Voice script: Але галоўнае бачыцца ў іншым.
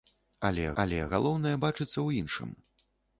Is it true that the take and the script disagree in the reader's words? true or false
true